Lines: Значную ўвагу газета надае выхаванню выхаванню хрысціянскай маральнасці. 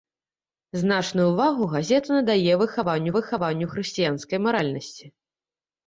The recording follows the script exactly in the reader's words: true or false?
true